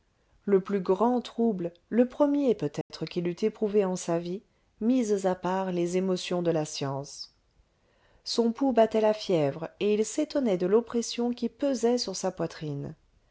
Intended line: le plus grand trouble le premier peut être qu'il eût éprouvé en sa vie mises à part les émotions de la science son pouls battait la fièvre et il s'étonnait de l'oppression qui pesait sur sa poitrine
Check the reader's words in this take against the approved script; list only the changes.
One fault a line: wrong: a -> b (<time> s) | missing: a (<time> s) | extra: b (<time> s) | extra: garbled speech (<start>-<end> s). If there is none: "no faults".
no faults